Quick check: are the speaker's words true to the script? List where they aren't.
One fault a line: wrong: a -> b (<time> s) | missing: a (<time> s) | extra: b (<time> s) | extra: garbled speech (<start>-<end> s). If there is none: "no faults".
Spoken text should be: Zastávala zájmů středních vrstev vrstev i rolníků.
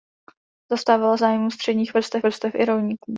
no faults